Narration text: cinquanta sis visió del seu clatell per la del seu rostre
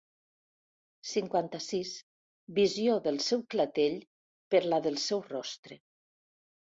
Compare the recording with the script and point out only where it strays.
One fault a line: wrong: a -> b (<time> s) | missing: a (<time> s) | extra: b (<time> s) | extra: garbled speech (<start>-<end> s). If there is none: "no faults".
no faults